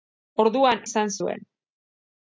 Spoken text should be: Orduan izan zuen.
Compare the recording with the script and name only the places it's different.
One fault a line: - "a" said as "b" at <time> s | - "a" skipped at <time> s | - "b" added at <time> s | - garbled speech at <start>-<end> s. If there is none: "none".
none